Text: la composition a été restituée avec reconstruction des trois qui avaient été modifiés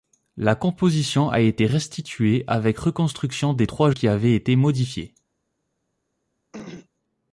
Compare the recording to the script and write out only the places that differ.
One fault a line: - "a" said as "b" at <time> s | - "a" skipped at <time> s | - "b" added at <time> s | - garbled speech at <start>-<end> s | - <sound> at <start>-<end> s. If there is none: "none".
- throat clearing at 6.5-6.9 s